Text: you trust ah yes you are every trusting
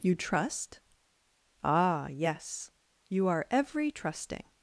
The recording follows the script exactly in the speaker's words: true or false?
true